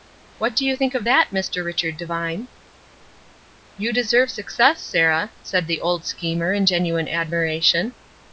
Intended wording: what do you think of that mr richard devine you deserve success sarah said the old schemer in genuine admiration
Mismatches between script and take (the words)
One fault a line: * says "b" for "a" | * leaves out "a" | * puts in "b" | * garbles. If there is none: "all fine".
all fine